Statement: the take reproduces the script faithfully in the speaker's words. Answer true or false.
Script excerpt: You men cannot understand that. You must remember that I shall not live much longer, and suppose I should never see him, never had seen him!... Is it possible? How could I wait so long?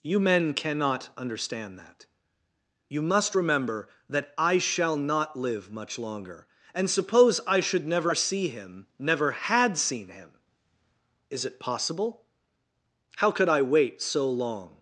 true